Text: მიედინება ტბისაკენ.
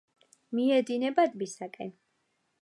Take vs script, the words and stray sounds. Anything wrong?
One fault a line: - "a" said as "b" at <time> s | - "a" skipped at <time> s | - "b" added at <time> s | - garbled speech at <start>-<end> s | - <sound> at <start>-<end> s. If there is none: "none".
none